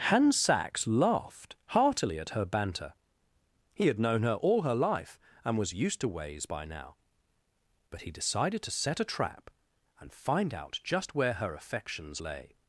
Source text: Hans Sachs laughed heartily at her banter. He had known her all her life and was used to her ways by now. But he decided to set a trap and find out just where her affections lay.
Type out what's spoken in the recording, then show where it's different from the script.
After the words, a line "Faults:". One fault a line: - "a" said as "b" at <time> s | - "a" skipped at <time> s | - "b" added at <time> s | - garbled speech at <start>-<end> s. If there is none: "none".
Hans Sachs laughed heartily at her banter. He had known her all her life and was used to ways by now. But he decided to set a trap and find out just where her affections lay.
Faults:
- "her" skipped at 6.1 s